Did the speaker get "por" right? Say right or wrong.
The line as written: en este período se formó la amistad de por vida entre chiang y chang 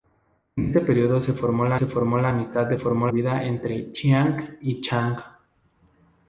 wrong